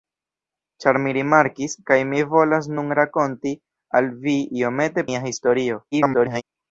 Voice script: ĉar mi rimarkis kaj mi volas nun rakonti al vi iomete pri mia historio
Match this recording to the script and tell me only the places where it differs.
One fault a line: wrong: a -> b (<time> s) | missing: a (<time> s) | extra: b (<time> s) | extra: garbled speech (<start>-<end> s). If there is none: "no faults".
missing: pri (5.1 s)
extra: garbled speech (5.9-6.4 s)